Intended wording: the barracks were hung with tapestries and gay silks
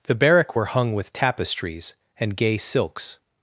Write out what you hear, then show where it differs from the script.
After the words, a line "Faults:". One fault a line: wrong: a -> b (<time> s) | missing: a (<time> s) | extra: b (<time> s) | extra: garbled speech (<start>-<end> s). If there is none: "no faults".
the barrack were hung with tapestries and gay silks
Faults:
wrong: barracks -> barrack (0.1 s)